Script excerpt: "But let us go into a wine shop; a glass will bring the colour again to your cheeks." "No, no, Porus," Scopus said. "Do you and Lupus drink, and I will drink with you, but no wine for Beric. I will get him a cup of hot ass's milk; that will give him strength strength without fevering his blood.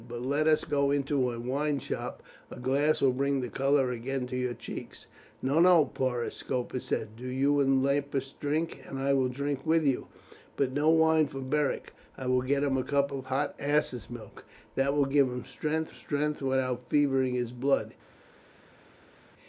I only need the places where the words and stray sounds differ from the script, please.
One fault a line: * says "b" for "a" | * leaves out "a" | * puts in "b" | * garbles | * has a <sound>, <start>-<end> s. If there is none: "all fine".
all fine